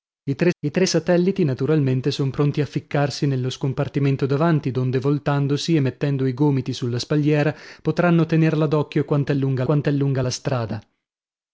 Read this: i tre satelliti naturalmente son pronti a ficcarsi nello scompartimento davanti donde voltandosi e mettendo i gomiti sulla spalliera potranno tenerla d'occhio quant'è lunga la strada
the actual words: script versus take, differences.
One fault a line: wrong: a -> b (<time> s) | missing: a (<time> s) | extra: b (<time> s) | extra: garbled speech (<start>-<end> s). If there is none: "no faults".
extra: i tre (0.6 s)
extra: quant'è lunga (9.6 s)